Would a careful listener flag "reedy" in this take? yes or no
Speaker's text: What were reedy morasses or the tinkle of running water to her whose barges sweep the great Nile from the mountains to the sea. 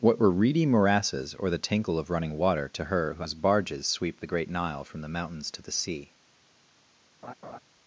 no